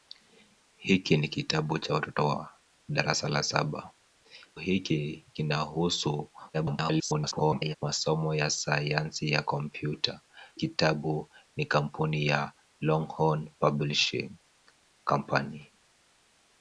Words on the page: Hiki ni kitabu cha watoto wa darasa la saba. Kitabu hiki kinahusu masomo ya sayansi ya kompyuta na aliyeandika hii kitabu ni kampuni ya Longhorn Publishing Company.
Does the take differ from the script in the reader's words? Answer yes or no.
yes